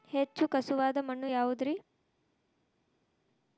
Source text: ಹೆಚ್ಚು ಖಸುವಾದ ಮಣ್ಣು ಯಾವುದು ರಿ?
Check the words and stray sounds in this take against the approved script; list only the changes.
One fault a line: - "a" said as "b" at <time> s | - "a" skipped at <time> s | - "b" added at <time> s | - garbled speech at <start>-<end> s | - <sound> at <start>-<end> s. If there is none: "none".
none